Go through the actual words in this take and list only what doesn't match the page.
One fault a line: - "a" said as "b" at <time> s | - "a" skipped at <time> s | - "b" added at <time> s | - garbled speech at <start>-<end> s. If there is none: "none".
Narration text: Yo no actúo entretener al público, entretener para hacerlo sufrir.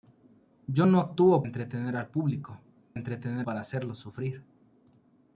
none